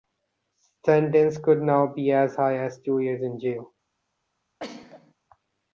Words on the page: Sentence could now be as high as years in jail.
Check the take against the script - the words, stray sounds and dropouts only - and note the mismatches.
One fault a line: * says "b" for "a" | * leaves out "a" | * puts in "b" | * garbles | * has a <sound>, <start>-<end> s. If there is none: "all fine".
* puts in "two"
* has a sneeze, 4.6-5.1 s